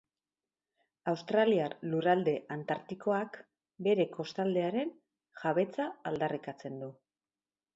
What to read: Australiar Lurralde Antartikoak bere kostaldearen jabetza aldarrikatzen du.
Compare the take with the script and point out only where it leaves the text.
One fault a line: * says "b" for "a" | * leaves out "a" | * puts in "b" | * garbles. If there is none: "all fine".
all fine